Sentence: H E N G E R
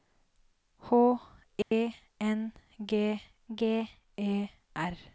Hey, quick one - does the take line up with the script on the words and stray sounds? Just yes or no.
no